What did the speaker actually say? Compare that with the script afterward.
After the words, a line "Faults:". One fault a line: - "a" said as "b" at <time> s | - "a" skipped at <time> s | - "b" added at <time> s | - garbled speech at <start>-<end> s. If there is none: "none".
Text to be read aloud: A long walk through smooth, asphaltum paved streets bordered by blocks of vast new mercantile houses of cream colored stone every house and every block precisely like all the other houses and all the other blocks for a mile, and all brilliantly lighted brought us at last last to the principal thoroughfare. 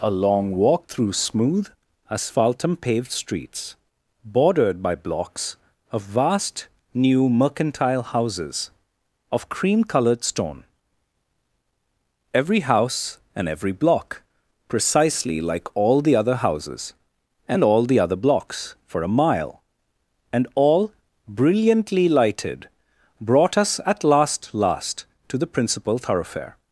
A long walk through smooth, asphaltum paved streets bordered by blocks of vast new mercantile houses of cream colored stone every house and every block precisely like all the other houses and all the other blocks for a mile, and all brilliantly lighted brought us at last last to the principal thoroughfare.
Faults:
none